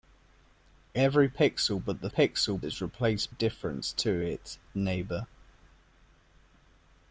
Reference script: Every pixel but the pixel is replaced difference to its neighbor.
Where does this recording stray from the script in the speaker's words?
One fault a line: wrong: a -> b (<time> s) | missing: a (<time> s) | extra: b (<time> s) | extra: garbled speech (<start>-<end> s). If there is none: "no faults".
no faults